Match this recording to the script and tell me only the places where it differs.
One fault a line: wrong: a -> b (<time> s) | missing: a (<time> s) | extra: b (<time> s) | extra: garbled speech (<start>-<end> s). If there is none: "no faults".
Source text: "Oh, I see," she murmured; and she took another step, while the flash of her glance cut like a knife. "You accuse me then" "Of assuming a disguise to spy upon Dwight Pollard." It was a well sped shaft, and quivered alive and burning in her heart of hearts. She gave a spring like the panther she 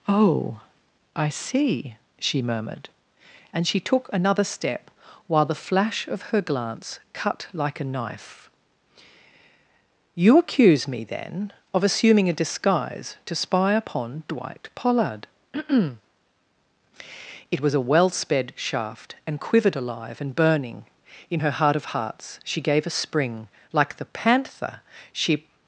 no faults